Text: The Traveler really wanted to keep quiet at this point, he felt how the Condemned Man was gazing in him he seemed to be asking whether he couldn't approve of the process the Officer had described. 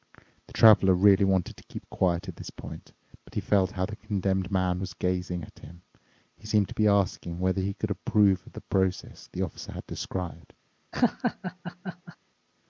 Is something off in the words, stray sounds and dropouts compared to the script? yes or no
yes